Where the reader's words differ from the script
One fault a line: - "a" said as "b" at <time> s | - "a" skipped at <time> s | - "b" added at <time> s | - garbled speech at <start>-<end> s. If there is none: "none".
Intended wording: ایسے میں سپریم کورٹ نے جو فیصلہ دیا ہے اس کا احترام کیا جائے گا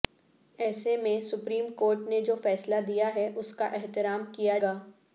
- "جائے" skipped at 4.6 s